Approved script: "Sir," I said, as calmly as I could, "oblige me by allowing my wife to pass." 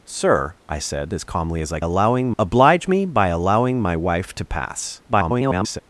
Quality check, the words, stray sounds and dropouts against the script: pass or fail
fail